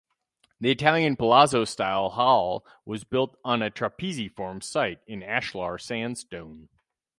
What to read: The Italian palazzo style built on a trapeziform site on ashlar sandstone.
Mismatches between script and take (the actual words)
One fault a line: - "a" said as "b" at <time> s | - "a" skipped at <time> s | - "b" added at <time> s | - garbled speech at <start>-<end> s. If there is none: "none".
- "hall was" added at 2.1 s
- "on" said as "in" at 5.0 s